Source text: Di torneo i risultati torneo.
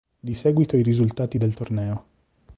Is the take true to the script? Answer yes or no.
no